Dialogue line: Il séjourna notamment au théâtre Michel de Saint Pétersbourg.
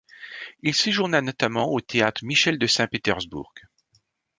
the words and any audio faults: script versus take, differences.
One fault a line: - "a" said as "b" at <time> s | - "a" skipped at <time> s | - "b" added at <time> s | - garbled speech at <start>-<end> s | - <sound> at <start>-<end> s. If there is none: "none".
none